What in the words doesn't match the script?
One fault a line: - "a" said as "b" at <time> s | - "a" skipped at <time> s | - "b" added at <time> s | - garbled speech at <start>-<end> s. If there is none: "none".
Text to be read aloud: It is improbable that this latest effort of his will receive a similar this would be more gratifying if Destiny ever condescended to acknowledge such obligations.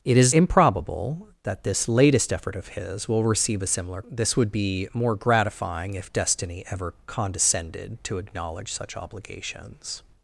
none